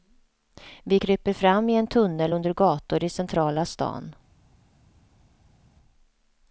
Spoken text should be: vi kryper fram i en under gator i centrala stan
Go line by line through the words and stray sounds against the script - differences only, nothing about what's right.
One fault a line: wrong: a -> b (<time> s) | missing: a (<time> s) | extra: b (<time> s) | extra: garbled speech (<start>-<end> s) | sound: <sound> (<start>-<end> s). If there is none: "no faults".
extra: tunnel (1.9 s)